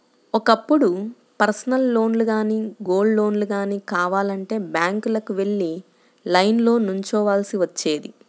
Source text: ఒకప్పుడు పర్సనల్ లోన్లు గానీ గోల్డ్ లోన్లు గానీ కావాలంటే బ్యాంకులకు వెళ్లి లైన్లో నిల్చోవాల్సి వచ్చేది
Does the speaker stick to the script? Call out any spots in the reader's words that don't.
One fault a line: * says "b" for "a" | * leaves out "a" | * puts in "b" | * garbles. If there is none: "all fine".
all fine